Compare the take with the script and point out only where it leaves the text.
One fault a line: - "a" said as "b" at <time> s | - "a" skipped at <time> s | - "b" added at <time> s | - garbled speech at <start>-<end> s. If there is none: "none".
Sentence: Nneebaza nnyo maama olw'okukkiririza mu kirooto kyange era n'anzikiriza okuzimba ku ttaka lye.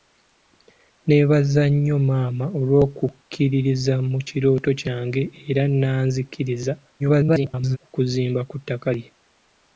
- garbled speech at 7.0-7.8 s